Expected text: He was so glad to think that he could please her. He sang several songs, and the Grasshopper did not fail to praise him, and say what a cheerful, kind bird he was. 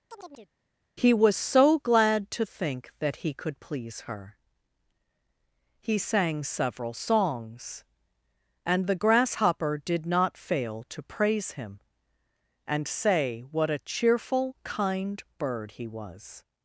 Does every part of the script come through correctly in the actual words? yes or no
yes